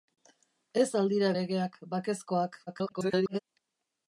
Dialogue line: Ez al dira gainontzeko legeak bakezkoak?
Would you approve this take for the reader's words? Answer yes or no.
no